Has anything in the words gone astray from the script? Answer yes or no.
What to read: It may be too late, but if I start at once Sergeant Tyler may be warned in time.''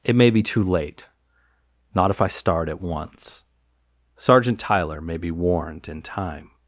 yes